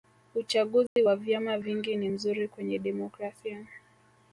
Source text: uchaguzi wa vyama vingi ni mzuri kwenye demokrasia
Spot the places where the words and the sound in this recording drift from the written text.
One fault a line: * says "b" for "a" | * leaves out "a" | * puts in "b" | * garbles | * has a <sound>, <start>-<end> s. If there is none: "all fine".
* has a dropout, 0.9-1.0 s